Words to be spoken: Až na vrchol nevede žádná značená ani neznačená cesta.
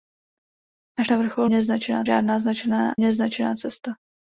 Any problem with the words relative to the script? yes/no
yes